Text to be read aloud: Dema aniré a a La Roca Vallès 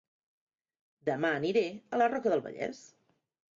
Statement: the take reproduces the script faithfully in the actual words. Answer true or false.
false